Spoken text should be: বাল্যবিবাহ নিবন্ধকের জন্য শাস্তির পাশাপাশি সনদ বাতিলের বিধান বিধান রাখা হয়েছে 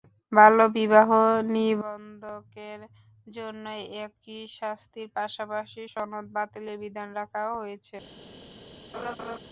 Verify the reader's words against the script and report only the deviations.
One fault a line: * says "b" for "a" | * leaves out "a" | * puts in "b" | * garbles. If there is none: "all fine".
* puts in "একই"
* leaves out "বিধান"